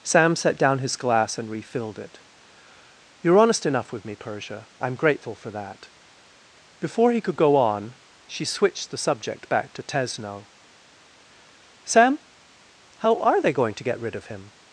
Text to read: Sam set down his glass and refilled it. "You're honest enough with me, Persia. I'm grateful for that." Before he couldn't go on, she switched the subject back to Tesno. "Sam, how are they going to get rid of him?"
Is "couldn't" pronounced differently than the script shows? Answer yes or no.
yes